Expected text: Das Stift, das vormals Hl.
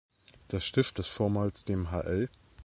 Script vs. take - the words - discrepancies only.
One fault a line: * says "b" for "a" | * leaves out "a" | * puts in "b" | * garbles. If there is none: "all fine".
* puts in "dem"